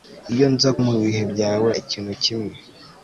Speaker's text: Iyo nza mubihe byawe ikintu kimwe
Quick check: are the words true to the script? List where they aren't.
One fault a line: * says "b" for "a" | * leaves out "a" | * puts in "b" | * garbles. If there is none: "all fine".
all fine